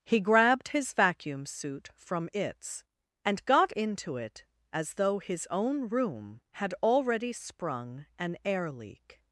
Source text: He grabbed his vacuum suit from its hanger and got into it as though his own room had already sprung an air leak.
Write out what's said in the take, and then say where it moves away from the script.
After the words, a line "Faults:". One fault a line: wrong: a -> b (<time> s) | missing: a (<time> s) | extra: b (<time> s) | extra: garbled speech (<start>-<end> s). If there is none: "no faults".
He grabbed his vacuum suit from its and got into it as though his own room had already sprung an air leak.
Faults:
missing: hanger (2.8 s)